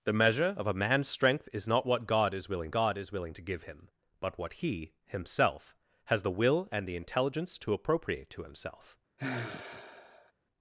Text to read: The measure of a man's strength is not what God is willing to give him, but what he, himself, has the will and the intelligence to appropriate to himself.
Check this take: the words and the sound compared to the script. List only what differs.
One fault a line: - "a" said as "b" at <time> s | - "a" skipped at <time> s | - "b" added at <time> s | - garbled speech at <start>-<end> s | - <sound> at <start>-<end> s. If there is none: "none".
- "God is willing" added at 2.7 s
- sigh at 9.2-10.3 s